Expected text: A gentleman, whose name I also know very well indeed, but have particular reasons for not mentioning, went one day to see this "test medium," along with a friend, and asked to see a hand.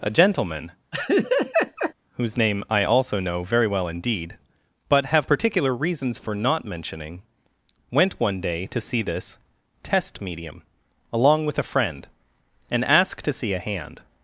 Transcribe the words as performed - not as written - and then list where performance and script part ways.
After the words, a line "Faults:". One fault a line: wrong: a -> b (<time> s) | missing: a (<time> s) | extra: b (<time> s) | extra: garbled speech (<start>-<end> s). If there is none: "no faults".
A gentleman, whose name I also know very well indeed, but have particular reasons for not mentioning, went one day to see this "test medium," along with a friend, and asked to see a hand.
Faults:
no faults